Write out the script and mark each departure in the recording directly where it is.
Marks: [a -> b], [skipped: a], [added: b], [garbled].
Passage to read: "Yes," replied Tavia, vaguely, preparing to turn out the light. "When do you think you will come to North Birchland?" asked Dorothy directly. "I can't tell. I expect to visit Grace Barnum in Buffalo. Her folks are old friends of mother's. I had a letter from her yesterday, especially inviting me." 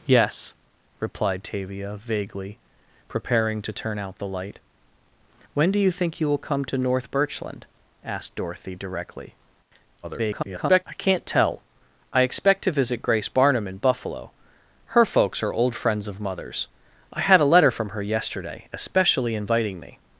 "Yes," replied Tavia, vaguely, preparing to turn out the light. "When do you think you will come to North Birchland?" asked Dorothy directly. [garbled] "I can't tell. I expect to visit Grace Barnum in Buffalo. Her folks are old friends of mother's. I had a letter from her yesterday, especially inviting me."